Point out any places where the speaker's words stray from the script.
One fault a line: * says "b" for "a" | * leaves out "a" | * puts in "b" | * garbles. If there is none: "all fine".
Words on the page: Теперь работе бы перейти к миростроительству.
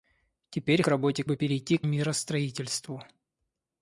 all fine